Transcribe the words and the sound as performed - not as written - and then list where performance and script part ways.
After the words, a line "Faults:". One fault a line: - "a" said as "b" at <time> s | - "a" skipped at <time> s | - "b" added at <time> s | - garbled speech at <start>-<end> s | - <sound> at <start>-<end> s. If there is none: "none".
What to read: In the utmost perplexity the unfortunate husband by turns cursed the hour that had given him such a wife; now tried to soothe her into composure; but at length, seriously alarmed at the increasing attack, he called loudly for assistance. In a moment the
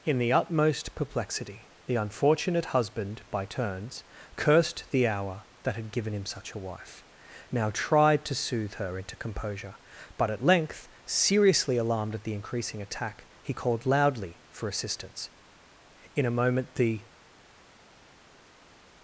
In the utmost perplexity the unfortunate husband by turns cursed the hour that had given him such a wife; now tried to soothe her into composure; but at length, seriously alarmed at the increasing attack, he called loudly for assistance. In a moment the
Faults:
none